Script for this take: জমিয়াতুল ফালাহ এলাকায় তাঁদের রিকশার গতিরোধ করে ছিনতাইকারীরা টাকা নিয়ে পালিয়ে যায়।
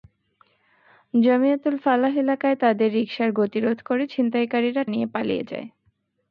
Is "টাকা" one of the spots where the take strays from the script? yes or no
yes